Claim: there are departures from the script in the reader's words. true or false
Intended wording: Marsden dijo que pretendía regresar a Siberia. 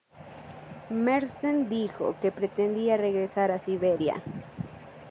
false